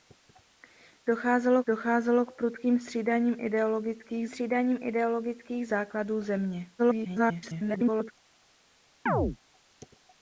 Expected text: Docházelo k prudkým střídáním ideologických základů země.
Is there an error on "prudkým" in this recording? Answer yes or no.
no